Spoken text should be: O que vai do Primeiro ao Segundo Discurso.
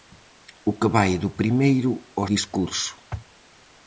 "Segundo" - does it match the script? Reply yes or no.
no